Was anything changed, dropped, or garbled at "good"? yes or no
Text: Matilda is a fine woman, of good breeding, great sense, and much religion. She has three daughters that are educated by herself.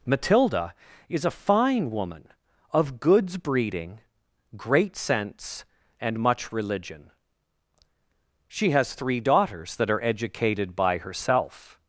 yes